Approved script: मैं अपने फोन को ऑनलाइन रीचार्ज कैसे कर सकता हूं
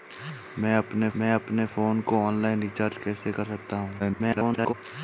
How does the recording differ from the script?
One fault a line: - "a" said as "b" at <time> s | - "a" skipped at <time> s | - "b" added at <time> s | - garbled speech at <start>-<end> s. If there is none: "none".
- "मैं अपने" added at 1.2 s
- garbled speech at 4.0-4.7 s